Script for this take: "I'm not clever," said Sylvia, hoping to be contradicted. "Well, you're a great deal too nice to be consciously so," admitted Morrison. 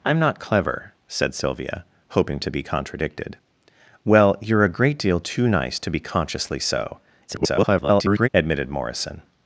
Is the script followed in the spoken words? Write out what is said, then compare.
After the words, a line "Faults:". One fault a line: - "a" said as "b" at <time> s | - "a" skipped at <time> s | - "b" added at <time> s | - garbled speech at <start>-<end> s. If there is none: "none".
"I'm not clever," said Sylvia, hoping to be contradicted. "Well, you're a great deal too nice to be consciously so," [garbled] admitted Morrison.
Faults:
- garbled speech at 7.3-8.3 s